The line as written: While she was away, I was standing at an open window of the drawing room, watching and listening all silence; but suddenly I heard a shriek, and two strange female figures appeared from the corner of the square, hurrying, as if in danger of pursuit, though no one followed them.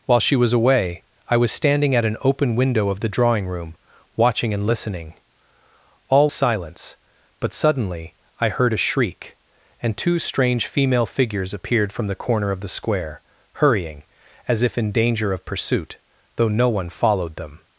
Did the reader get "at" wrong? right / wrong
right